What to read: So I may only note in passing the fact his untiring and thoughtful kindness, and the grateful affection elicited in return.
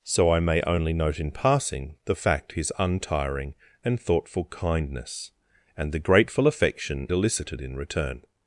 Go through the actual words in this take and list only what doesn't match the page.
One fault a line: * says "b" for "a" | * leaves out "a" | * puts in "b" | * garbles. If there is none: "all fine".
all fine